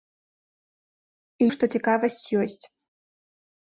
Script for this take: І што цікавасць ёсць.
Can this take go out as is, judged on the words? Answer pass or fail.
pass